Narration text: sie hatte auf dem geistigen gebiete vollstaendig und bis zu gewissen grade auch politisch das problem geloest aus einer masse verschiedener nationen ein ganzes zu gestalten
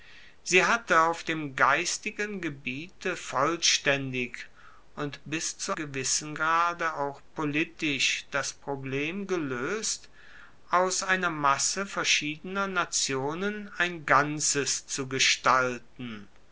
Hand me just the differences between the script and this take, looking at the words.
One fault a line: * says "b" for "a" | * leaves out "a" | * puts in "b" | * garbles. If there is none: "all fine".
all fine